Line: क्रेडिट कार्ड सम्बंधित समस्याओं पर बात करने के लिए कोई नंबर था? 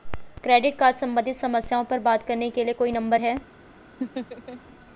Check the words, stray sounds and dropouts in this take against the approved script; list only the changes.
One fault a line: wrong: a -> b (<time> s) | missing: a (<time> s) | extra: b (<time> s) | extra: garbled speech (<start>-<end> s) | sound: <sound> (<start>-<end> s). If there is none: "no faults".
wrong: था -> है (3.2 s)
sound: laugh (4.0-4.6 s)